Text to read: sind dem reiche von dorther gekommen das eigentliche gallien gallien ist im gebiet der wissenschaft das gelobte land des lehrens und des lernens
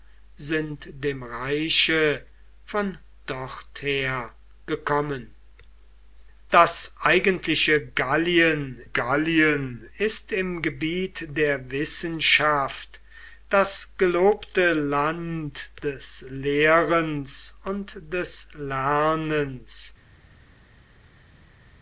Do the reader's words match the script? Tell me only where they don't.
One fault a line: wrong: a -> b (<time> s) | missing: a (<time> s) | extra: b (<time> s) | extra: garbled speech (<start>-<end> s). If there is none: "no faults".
no faults